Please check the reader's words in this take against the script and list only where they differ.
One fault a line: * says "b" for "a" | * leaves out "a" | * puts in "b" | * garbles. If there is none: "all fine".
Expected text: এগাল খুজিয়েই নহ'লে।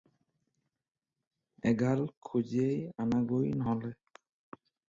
* puts in "আনাগৈ"